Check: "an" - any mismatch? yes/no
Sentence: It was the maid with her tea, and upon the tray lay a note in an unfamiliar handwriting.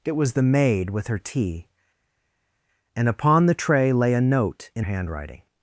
yes